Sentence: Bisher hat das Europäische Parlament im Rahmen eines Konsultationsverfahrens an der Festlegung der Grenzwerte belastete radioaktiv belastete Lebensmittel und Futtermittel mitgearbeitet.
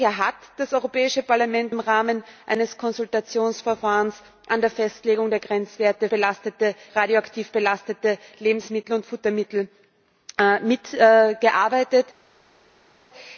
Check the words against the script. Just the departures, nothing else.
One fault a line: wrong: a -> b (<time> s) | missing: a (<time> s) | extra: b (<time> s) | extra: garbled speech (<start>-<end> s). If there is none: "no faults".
no faults